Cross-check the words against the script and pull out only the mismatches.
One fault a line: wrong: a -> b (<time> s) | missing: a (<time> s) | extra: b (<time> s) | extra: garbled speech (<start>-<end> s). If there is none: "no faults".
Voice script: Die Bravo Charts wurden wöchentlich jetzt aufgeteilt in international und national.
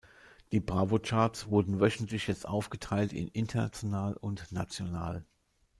no faults